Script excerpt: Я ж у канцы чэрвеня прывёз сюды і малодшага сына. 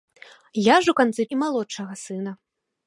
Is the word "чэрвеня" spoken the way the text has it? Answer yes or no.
no